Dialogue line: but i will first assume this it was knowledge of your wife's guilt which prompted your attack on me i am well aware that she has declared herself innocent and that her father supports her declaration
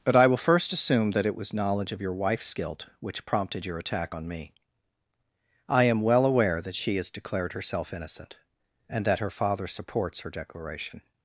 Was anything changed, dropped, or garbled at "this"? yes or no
yes